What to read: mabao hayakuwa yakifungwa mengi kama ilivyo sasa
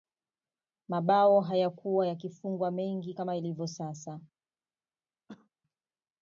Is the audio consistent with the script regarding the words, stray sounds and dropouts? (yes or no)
no